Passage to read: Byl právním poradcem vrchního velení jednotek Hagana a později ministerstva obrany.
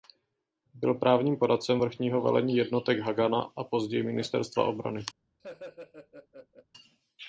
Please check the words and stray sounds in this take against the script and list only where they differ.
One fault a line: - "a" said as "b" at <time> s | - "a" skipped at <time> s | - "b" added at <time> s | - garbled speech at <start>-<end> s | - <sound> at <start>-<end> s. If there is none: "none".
- laugh at 5.4-6.7 s